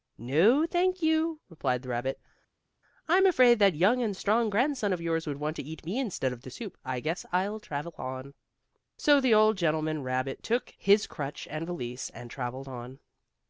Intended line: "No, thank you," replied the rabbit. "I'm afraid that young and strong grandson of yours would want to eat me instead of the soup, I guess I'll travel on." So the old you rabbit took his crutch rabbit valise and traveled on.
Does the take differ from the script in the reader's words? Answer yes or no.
yes